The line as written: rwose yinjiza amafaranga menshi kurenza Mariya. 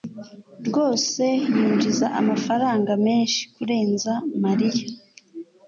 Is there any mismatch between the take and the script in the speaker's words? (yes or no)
no